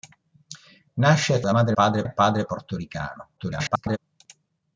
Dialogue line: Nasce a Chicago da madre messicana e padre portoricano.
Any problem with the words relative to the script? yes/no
yes